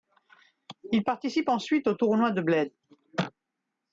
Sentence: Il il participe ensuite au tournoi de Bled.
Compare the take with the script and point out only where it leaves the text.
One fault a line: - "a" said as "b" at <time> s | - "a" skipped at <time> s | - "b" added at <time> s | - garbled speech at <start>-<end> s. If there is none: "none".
- "il" skipped at 1.0 s